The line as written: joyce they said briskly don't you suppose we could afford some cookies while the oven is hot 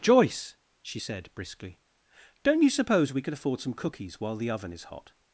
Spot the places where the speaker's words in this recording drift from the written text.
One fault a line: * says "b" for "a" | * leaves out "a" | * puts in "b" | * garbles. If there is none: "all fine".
* says "she" for "they"